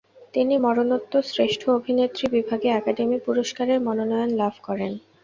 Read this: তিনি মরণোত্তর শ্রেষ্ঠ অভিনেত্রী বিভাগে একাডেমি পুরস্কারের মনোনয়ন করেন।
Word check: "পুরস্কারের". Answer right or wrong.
right